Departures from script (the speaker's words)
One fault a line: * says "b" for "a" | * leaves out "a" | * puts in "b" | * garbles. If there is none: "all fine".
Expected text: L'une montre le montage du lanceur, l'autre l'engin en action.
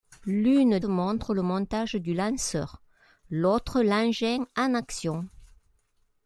all fine